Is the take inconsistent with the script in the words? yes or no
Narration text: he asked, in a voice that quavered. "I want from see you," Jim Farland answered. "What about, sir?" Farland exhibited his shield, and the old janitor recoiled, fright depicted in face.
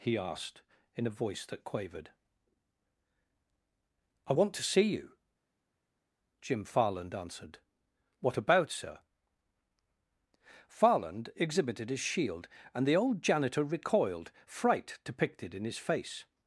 yes